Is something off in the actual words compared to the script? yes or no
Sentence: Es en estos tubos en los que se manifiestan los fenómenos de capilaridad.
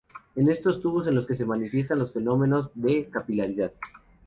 no